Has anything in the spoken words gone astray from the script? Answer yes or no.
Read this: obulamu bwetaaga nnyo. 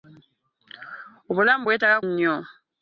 no